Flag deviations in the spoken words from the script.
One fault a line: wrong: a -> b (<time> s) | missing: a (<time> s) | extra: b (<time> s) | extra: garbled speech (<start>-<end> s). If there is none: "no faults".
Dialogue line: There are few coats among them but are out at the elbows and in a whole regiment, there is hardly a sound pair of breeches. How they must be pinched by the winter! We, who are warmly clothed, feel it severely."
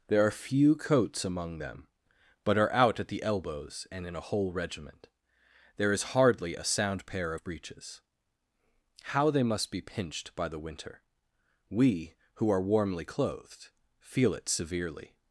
no faults